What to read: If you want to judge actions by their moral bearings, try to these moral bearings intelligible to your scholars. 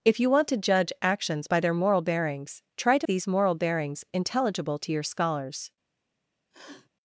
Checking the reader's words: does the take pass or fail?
pass